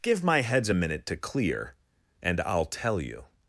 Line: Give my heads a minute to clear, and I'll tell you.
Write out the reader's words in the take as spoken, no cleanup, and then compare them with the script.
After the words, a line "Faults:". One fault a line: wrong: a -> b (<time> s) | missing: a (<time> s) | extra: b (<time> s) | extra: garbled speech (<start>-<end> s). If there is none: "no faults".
Give my heads a minute to clear, and I'll tell you.
Faults:
no faults